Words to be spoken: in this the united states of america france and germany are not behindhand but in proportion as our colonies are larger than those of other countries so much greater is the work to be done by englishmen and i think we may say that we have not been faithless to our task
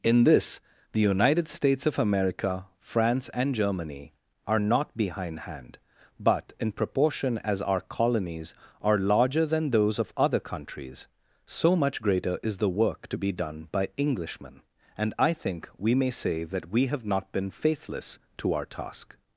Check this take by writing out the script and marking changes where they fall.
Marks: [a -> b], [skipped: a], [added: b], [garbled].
in this the united states of america france and germany are not behindhand but in proportion as our colonies are larger than those of other countries so much greater is the work to be done by englishmen and i think we may say that we have not been faithless to our task